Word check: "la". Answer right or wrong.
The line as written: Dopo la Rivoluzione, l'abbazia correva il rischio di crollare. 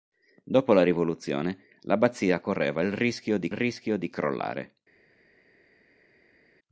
right